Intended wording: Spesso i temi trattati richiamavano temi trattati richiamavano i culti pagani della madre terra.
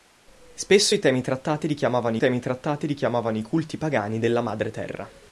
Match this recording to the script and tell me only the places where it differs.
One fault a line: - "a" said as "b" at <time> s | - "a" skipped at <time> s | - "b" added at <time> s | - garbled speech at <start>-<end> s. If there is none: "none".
none